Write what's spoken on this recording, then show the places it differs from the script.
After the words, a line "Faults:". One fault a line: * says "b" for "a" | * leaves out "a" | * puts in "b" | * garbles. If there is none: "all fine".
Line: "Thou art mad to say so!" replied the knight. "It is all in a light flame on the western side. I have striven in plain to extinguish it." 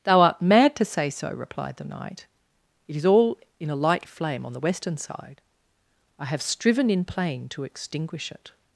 "Thou art mad to say so!" replied the knight. "It is all in a light flame on the western side. I have striven in plain to extinguish it."
Faults:
all fine